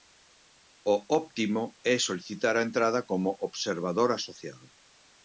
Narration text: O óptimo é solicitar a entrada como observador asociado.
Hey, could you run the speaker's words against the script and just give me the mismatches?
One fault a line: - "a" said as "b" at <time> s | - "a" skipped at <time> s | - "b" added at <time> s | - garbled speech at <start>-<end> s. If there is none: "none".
none